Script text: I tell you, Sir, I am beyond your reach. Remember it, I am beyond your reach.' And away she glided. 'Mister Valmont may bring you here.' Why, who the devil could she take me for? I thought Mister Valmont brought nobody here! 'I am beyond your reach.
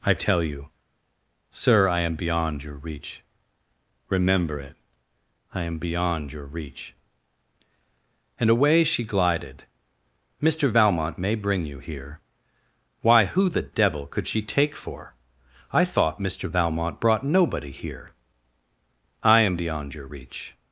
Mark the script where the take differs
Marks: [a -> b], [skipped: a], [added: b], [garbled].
I tell you, Sir, I am beyond your reach. Remember it, I am beyond your reach.' And away she glided. 'Mister Valmont may bring you here.' Why, who the devil could she take [skipped: me] for? I thought Mister Valmont brought nobody here! 'I am beyond your reach.